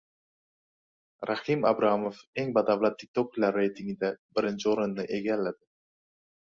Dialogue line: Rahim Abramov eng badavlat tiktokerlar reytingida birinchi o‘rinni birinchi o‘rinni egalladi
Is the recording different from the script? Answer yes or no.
yes